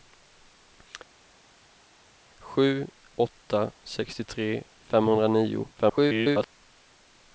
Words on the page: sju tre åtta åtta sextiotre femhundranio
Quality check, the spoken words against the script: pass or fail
fail